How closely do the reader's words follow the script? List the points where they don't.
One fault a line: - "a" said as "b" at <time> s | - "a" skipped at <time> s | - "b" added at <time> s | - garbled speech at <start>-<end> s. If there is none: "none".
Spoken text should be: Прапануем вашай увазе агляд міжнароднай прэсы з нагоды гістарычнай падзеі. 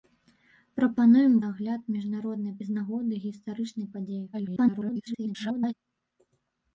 - "вашай увазе" skipped at 1.3 s
- "прэсы" skipped at 2.6 s
- garbled speech at 4.3-5.7 s